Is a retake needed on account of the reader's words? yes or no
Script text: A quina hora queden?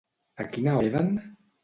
yes